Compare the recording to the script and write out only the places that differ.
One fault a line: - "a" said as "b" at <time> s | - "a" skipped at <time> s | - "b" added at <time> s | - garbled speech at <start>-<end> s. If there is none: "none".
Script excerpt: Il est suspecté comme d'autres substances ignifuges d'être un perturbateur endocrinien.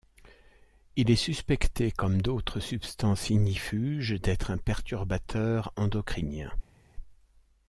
none